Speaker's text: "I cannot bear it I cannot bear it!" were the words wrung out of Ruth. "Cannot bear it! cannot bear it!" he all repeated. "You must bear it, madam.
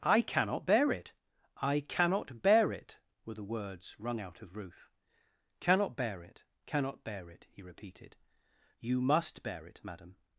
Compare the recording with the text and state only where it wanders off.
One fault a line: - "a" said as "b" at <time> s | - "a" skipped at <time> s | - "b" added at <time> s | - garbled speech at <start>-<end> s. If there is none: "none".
- "all" skipped at 7.6 s